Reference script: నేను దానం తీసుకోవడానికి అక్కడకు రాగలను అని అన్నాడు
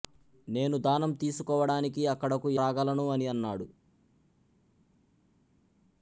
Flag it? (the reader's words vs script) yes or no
no